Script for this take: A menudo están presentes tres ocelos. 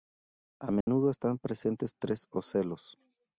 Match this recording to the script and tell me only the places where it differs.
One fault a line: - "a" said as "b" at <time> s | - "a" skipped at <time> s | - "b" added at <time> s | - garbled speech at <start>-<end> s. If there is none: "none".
none